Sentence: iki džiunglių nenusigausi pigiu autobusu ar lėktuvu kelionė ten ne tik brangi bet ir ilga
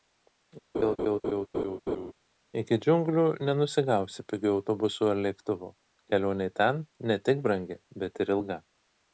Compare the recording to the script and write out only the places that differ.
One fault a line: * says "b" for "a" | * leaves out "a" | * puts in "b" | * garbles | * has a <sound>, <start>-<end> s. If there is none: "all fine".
* has a laugh, 0.7-2.1 s